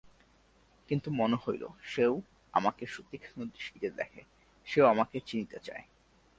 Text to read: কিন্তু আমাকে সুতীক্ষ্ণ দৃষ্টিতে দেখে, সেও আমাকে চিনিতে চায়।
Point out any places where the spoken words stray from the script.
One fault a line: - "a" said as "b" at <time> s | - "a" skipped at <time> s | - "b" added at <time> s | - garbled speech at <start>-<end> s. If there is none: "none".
- "মনে হইল সেও" added at 1.1 s